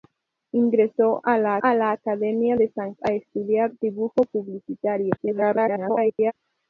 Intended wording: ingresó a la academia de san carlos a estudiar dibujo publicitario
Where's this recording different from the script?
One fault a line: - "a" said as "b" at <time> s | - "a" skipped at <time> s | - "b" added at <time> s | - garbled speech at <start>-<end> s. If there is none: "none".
- "a la" added at 1.6 s
- "carlos" skipped at 2.9 s
- garbled speech at 5.2-6.3 s